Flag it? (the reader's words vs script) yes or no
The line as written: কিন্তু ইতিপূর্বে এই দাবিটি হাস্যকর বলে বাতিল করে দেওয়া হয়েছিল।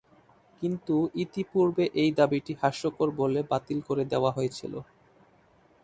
no